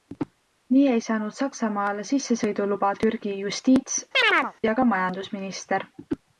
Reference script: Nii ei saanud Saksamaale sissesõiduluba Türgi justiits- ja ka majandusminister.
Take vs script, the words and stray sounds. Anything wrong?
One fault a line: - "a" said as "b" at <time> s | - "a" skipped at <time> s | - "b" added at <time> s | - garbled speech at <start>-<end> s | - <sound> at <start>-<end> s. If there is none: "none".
- chirp at 4.1-4.5 s